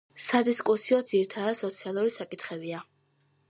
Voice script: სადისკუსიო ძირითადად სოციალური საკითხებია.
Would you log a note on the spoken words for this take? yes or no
no